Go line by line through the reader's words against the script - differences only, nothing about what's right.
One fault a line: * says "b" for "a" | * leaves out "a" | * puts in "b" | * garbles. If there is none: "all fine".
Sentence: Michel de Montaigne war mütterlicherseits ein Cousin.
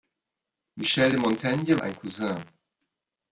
* leaves out "war mütterlicherseits"